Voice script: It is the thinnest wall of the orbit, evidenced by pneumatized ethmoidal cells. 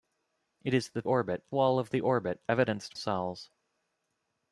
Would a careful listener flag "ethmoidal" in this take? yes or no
yes